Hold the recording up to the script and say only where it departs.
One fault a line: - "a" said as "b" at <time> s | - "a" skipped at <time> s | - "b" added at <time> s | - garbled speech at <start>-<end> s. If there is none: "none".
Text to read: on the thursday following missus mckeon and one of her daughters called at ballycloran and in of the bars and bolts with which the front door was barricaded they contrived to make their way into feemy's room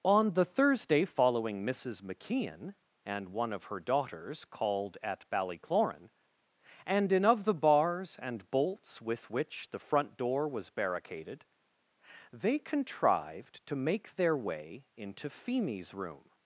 none